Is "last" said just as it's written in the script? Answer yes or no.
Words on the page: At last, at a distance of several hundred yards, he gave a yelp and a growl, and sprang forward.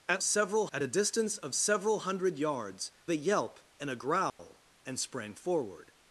no